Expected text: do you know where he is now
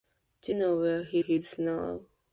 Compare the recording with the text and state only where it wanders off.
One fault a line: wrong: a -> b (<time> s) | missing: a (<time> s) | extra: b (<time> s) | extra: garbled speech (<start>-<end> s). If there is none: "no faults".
missing: you (0.6 s)
extra: he (1.2 s)